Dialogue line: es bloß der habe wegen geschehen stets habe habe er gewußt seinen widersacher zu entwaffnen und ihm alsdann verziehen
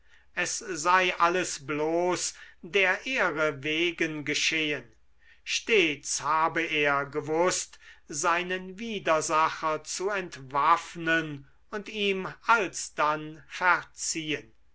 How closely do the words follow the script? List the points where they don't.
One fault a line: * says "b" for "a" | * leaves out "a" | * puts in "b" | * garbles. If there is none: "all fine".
* puts in "sei alles"
* says "ehre" for "habe"
* leaves out "habe"